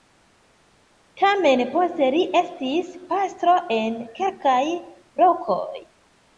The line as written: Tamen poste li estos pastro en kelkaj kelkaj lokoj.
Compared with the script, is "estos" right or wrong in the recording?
wrong